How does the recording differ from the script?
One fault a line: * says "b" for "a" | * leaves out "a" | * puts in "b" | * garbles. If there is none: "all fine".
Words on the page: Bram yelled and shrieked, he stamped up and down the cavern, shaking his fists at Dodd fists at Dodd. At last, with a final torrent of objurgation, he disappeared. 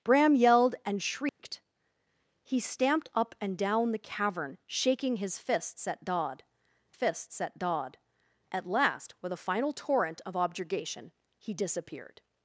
all fine